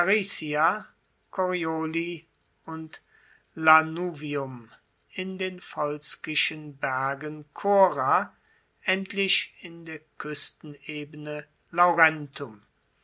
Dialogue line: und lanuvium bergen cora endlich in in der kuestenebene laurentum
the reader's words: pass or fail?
fail